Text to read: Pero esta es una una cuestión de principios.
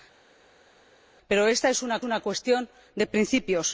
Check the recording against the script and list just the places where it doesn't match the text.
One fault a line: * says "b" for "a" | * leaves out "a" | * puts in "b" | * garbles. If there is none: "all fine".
all fine